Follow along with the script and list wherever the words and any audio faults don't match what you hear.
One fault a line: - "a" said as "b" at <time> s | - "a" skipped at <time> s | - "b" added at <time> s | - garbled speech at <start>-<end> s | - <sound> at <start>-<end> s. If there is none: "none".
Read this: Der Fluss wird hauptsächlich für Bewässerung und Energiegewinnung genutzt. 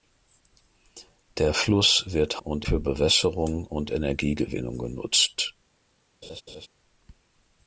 - "hauptsächlich" said as "und" at 2.4 s
- laugh at 6.2-6.7 s